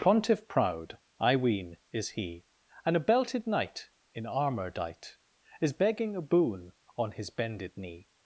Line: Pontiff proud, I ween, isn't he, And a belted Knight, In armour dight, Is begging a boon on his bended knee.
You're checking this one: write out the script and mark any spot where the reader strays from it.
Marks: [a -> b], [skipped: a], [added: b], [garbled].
Pontiff proud, I ween, [isn't -> is] he, And a belted Knight, In armour dight, Is begging a boon on his bended knee.